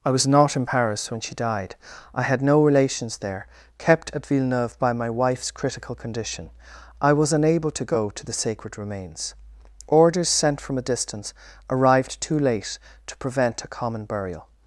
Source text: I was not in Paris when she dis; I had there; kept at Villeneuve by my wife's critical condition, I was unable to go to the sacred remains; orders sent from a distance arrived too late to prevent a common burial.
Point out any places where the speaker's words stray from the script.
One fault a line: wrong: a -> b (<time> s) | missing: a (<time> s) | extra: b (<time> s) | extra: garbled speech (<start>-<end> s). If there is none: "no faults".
wrong: dis -> died (1.3 s)
extra: no relations (2.4 s)